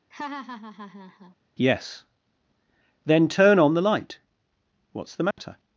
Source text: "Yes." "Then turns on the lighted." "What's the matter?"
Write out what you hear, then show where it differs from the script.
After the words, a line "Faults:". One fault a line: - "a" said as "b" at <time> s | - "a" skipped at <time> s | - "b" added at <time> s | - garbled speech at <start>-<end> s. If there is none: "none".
"Yes." "Then turn on the light." "What's the matter?"
Faults:
- "turns" said as "turn" at 3.3 s
- "lighted" said as "light" at 3.8 s